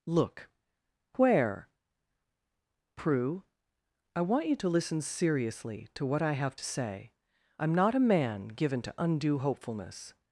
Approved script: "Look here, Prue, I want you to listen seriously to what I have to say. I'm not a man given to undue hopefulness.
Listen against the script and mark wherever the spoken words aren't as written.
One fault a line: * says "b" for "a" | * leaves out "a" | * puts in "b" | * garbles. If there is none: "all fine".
* says "where" for "here"